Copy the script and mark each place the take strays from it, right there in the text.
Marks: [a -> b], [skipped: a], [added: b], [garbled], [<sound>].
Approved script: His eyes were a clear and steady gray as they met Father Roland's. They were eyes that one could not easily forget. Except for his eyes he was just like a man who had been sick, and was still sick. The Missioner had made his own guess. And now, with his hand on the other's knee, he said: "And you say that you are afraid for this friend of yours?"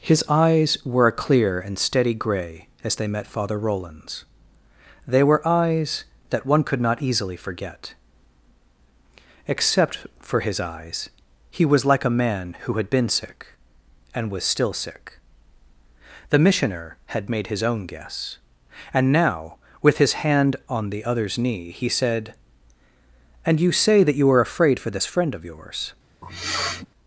His eyes were a clear and steady gray as they met Father Roland's. They were eyes that one could not easily forget. Except for his eyes he was [skipped: just] like a man who had been sick, and was still sick. The Missioner had made his own guess. And now, with his hand on the other's knee, he said: "And you say that you are afraid for this friend of yours?" [sniff]